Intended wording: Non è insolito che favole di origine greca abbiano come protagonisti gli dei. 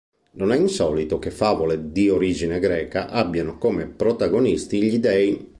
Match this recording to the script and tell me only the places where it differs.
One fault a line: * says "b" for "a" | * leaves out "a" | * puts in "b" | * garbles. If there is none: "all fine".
all fine